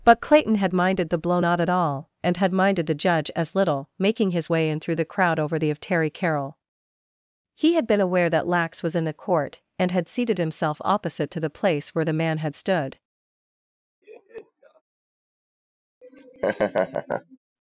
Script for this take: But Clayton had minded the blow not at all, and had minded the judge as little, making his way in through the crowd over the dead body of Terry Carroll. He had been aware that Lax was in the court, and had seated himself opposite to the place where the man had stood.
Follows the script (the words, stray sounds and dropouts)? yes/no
no